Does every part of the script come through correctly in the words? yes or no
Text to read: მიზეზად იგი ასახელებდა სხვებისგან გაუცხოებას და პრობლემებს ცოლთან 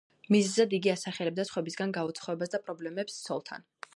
yes